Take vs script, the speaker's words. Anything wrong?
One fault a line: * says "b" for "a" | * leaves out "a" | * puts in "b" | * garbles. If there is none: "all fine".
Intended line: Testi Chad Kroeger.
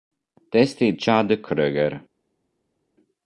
all fine